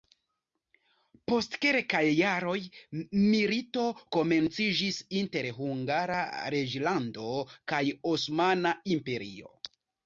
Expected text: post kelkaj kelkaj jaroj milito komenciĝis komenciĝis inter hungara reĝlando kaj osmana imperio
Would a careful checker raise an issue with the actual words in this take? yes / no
yes